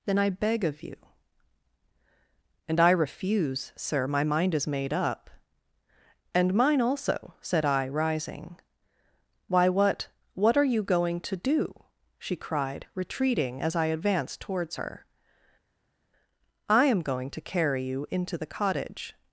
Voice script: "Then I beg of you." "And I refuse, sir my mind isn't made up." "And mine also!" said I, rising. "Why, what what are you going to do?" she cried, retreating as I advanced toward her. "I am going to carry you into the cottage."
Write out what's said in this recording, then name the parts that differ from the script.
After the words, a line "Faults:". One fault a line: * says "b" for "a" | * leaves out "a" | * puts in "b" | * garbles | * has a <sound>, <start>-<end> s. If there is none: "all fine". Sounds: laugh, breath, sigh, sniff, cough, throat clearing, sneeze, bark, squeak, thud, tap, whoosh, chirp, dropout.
"Then I beg of you." "And I refuse, sir my mind is made up." "And mine also!" said I, rising. "Why, what what are you going to do?" she cried, retreating as I advanced towards her. "I am going to carry you into the cottage."
Faults:
* says "is" for "isn't"
* says "towards" for "toward"